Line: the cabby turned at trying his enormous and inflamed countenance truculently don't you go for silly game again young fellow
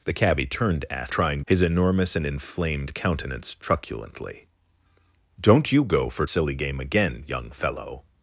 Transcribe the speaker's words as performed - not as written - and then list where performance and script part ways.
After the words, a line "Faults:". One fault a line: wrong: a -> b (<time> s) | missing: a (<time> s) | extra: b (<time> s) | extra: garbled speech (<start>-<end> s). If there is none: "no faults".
the cabby turned at trying his enormous and inflamed countenance truculently don't you go for silly game again young fellow
Faults:
no faults